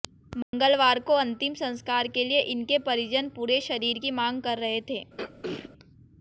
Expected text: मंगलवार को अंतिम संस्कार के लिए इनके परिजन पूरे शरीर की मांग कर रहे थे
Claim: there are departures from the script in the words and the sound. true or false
true